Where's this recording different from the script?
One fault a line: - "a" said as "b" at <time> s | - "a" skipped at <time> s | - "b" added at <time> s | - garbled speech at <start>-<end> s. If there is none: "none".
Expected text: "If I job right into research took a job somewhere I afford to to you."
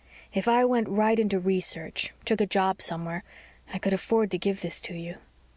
- "job" said as "went" at 0.7 s
- "could" added at 3.8 s
- "give this" added at 4.4 s